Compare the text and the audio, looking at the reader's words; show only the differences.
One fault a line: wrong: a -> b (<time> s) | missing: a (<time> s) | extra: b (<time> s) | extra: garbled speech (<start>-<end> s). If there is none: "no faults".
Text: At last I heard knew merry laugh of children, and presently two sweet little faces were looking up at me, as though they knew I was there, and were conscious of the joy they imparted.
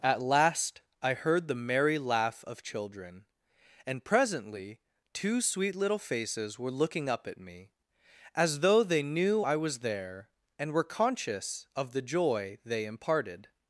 wrong: knew -> the (1.5 s)